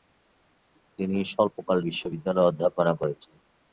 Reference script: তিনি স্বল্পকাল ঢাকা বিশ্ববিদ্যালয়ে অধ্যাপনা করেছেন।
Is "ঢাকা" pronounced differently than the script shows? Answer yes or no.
yes